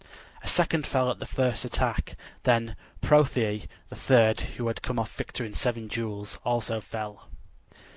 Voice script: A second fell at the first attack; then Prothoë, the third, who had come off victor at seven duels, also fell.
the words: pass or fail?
fail